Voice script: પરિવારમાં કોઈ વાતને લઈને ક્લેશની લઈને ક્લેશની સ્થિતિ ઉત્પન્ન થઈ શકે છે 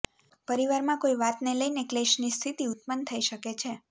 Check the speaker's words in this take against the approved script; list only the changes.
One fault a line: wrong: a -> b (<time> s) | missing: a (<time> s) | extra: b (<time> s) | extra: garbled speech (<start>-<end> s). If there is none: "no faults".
missing: લઈને ક્લેશની (2.3 s)